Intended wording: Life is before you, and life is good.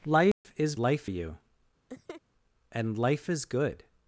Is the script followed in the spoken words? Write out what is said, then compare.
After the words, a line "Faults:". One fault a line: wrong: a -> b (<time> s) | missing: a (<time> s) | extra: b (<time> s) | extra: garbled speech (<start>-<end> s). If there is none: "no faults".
Life is life you, and life is good.
Faults:
wrong: before -> life (0.8 s)